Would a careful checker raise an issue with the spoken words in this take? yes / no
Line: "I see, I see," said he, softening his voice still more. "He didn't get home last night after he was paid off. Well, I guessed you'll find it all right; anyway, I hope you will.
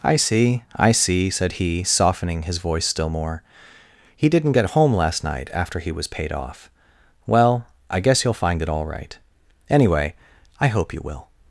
yes